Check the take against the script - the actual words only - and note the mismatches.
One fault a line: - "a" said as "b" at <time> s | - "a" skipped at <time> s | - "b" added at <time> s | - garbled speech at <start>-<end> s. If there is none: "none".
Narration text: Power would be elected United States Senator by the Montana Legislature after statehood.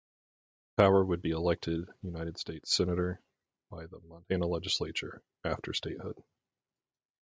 none